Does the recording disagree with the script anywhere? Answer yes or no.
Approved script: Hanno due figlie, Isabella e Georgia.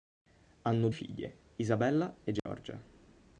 yes